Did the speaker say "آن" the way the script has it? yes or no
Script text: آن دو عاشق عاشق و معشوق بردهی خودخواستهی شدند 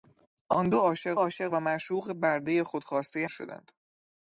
yes